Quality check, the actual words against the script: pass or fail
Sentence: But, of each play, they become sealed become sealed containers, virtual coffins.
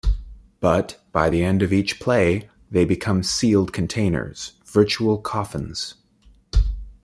fail